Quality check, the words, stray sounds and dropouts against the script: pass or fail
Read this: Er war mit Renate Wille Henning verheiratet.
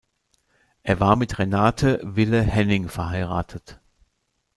pass